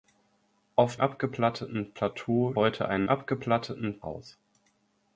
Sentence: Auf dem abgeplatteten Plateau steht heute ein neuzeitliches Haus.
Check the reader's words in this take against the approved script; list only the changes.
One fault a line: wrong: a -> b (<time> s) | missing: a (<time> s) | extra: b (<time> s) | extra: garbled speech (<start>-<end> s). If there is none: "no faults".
missing: dem (1.0 s)
missing: steht (2.6 s)
wrong: neuzeitliches -> abgeplatteten (3.1 s)